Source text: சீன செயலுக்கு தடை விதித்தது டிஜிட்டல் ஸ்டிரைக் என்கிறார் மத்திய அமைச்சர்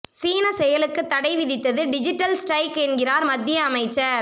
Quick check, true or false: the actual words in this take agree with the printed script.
true